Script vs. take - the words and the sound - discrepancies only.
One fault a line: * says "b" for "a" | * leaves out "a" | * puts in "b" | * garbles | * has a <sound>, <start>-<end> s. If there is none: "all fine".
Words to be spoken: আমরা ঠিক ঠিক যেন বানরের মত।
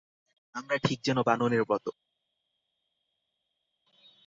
* leaves out "ঠিক"